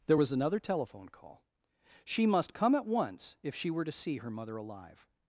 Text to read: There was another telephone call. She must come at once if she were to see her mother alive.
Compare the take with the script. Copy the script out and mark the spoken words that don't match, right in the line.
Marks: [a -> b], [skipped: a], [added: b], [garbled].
There was another telephone call. She must come at once if she were to see her mother alive.